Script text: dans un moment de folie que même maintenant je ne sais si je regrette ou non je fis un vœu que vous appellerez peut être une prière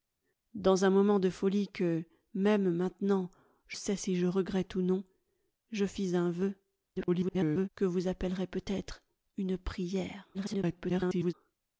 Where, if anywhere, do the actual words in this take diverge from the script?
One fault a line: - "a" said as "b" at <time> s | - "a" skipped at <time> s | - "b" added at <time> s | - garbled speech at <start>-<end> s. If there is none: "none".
- "ne" skipped at 3.8 s
- garbled speech at 6.9-7.7 s
- garbled speech at 10.3-11.3 s